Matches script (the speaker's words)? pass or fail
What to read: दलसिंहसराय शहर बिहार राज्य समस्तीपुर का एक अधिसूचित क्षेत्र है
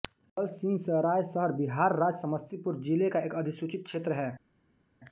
fail